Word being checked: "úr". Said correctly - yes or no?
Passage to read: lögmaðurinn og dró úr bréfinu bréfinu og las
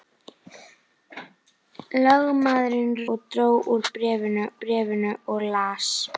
yes